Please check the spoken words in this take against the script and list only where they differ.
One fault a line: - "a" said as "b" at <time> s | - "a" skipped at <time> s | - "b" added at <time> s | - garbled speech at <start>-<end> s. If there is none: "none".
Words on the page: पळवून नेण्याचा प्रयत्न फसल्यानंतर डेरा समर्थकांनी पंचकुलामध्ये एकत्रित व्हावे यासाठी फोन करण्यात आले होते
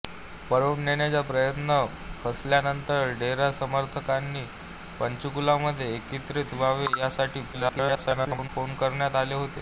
- garbled speech at 7.5-8.5 s